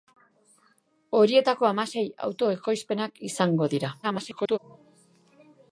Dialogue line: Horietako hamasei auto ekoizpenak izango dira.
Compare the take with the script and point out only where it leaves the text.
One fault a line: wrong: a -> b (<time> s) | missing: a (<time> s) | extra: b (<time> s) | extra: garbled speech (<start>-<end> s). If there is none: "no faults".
extra: garbled speech (4.0-4.6 s)